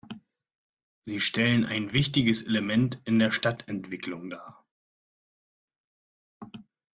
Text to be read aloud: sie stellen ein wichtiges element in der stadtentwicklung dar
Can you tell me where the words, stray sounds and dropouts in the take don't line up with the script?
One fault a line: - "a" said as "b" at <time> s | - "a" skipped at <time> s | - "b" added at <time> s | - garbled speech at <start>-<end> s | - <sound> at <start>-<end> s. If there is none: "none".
none